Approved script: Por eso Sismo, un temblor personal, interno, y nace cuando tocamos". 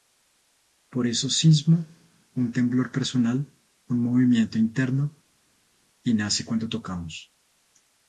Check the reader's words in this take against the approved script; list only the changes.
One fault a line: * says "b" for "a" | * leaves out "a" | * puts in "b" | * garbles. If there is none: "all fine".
* puts in "un movimiento"